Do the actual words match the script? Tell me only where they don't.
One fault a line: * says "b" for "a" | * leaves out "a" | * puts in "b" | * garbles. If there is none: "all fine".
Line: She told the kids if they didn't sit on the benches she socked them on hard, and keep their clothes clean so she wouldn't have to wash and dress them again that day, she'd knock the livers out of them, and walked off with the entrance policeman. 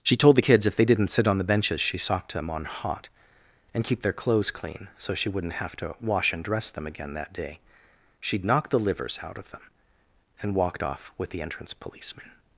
* says "hot" for "hard"